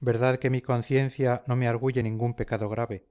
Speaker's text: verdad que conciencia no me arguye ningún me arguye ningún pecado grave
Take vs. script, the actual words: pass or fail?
fail